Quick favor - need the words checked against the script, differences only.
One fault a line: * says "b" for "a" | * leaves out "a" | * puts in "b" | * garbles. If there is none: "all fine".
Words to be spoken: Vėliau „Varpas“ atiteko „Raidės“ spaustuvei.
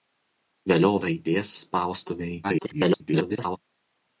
* leaves out "Varpas atiteko"
* garbles